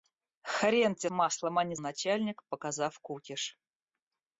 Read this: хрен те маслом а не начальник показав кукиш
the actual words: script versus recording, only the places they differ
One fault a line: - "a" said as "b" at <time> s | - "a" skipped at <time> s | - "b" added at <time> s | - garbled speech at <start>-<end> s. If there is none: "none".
none